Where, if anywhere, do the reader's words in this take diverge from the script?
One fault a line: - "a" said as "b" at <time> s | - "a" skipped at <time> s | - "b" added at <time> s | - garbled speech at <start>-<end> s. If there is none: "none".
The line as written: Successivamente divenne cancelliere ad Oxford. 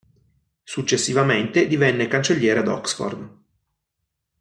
none